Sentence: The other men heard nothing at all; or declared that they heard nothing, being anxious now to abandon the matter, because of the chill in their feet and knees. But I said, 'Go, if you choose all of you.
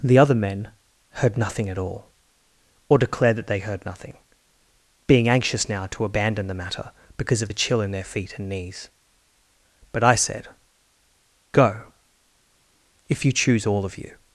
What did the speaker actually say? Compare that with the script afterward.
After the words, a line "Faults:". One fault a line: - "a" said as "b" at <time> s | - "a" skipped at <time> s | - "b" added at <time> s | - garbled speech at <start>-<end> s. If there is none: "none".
The other men heard nothing at all; or declared that they heard nothing, being anxious now to abandon the matter, because of the chill in their feet and knees. But I said, 'Go, if you choose all of you.
Faults:
none